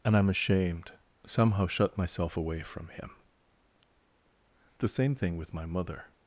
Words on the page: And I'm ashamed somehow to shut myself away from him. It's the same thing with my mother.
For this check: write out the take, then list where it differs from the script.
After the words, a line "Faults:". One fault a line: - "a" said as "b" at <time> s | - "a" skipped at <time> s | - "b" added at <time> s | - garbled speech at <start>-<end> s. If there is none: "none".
And I'm ashamed somehow shut myself away from him. It's the same thing with my mother.
Faults:
- "to" skipped at 1.7 s